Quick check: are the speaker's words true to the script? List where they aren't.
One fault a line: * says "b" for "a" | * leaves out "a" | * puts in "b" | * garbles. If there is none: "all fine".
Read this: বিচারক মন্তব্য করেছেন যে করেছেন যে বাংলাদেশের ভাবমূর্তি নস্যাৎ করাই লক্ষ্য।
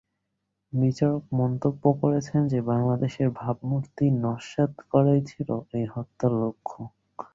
* leaves out "করেছেন যে"
* puts in "ছিল এই হত্যার"